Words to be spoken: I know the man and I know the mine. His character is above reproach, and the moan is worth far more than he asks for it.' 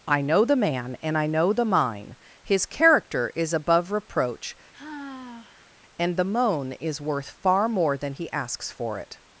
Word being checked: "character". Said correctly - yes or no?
yes